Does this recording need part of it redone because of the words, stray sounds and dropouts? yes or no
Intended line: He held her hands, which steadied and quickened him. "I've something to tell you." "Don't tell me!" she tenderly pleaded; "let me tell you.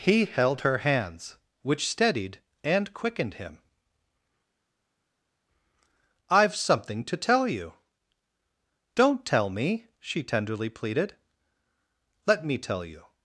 no